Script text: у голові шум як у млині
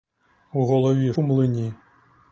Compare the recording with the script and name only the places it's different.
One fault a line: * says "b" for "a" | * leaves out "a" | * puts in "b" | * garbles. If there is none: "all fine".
* leaves out "шум як"